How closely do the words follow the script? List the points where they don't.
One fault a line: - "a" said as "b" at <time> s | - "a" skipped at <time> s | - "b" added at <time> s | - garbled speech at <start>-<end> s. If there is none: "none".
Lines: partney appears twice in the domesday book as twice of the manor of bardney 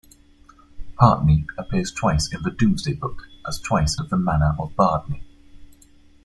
none